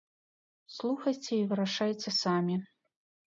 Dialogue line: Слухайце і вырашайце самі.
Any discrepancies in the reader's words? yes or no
no